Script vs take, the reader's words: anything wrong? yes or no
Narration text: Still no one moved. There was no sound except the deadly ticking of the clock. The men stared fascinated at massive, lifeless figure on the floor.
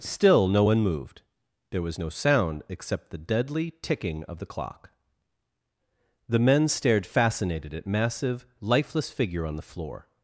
no